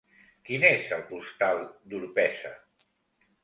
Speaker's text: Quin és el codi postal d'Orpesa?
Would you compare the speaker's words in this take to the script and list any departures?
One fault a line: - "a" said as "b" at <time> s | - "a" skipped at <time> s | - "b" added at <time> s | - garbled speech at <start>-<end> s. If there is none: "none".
- "codi" skipped at 1.0 s